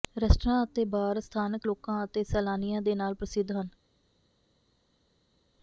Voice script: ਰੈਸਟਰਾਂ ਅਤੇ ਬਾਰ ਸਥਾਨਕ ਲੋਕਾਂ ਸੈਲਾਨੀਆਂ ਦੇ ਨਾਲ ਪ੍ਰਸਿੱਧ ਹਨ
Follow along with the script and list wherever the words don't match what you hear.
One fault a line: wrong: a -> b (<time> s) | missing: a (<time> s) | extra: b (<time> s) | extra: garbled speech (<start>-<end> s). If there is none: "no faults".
extra: ਅਤੇ (2.0 s)